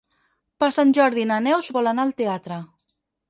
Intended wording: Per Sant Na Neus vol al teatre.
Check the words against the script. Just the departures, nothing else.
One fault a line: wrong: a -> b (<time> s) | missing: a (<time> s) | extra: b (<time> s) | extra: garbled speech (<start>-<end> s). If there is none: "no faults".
extra: Jordi (1.0 s)
extra: anar (1.9 s)